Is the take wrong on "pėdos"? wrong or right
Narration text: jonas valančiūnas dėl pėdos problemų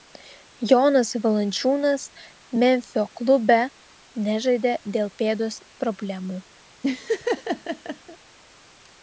right